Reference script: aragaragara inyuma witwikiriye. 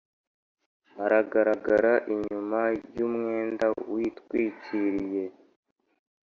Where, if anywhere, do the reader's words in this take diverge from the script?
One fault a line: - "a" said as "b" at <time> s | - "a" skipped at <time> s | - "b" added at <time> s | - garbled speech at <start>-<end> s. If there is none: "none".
- "y'umwenda" added at 3.0 s